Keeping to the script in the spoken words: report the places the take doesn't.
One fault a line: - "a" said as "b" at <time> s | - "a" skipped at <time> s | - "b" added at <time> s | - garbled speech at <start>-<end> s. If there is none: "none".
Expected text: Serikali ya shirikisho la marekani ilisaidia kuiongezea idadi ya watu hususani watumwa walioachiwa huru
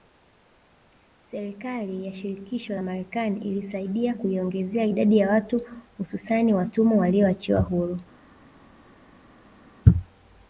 none